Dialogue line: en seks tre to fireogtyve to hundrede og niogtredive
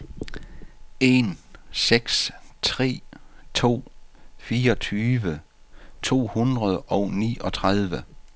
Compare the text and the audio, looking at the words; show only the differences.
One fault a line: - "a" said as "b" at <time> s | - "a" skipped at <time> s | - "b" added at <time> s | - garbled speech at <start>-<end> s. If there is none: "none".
none